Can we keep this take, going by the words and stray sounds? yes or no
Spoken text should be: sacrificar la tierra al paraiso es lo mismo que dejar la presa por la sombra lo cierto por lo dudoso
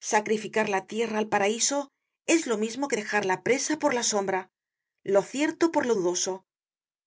yes